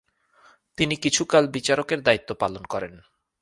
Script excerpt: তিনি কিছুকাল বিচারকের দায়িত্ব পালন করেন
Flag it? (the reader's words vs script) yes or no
no